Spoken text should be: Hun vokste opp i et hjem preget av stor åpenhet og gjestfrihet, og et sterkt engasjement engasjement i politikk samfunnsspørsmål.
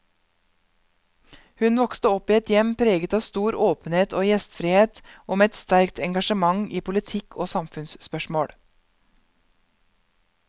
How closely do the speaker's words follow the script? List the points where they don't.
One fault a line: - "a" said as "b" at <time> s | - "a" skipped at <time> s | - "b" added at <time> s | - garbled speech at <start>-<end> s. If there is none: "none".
- "med" added at 5.4 s
- "engasjement" skipped at 6.6 s
- "og" added at 7.4 s